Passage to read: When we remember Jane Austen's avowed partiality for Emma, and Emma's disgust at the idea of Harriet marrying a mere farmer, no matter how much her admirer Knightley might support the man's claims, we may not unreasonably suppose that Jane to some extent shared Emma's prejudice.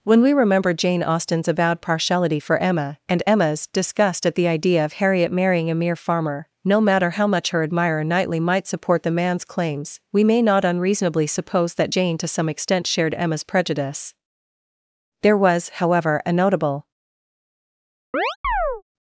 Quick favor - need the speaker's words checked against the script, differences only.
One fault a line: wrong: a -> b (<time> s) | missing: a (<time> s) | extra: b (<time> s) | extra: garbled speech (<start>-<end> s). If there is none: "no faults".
extra: There was however a notable (15.2 s)